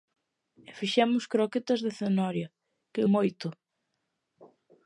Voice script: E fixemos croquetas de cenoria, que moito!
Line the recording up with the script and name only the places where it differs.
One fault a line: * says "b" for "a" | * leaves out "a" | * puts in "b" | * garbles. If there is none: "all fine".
all fine